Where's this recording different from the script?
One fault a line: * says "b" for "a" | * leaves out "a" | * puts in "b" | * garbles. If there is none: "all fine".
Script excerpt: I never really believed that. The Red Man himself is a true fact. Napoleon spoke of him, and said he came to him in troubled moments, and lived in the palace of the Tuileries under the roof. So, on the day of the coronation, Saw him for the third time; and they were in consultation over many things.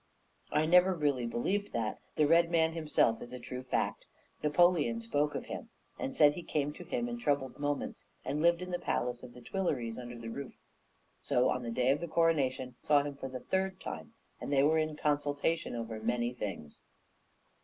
all fine